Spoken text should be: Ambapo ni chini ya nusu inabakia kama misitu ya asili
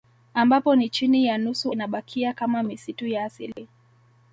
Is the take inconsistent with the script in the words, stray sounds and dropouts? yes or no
yes